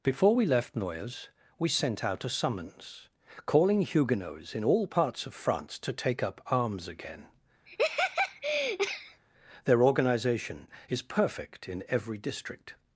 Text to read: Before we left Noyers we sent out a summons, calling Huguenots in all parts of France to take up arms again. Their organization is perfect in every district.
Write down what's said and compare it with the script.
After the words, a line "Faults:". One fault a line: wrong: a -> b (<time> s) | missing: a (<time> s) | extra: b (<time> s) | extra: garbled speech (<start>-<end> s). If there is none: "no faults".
Before we left Noyers we sent out a summons, calling Huguenots in all parts of France to take up arms again. Their organization is perfect in every district.
Faults:
no faults